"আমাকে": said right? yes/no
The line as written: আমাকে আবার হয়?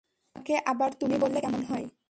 yes